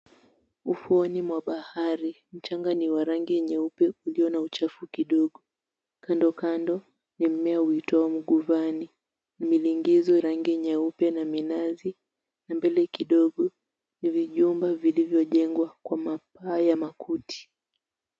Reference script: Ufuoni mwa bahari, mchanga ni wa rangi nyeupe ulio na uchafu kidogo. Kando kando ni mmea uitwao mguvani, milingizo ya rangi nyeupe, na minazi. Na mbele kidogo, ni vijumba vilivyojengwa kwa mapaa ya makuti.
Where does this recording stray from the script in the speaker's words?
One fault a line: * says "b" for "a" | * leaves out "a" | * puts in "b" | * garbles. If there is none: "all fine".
* leaves out "ya"